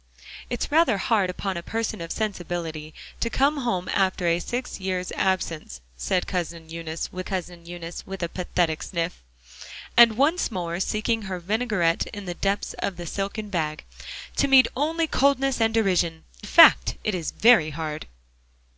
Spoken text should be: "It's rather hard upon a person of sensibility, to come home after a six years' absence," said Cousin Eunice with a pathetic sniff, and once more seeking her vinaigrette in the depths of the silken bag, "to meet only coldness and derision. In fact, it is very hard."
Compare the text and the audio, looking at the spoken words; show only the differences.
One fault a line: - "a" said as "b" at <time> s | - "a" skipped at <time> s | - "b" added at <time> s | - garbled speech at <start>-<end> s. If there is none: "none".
- "Cousin Eunice with" added at 7.2 s
- "In" skipped at 16.2 s